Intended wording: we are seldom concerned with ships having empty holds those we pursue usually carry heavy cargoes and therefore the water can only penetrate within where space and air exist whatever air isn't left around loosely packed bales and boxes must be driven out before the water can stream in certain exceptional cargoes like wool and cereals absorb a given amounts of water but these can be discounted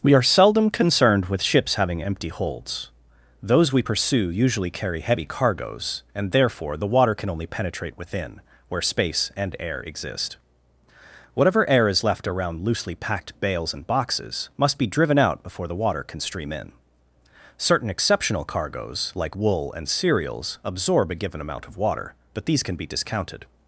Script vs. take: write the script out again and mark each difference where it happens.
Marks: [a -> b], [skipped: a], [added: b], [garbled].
we are seldom concerned with ships having empty holds those we pursue usually carry heavy cargoes and therefore the water can only penetrate within where space and air exist whatever air [isn't -> is] left around loosely packed bales and boxes must be driven out before the water can stream in certain exceptional cargoes like wool and cereals absorb a given [amounts -> amount] of water but these can be discounted